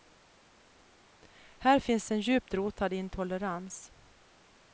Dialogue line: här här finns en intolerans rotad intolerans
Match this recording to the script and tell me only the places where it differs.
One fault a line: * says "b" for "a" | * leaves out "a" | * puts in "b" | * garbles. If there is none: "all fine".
* leaves out "här"
* says "djupt" for "intolerans"